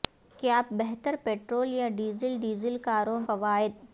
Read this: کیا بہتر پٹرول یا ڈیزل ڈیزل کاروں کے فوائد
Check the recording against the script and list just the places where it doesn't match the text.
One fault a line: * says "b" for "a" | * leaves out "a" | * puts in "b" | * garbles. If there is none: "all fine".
* leaves out "کے"